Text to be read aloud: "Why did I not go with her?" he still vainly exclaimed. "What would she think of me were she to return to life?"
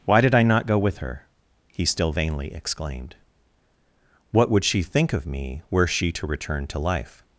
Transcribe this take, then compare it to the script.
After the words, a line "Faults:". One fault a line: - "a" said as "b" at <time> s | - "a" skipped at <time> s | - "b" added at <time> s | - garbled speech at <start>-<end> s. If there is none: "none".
"Why did I not go with her?" he still vainly exclaimed. "What would she think of me were she to return to life?"
Faults:
none